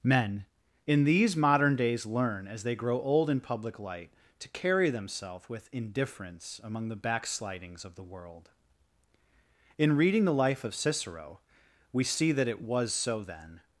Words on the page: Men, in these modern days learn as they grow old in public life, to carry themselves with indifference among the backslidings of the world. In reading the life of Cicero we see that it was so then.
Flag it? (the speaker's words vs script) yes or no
yes